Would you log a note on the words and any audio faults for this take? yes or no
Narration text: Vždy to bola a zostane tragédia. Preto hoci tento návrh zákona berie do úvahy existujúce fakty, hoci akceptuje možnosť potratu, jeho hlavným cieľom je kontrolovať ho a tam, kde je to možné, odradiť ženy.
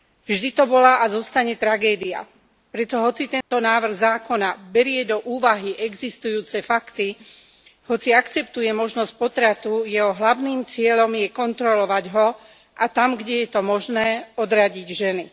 yes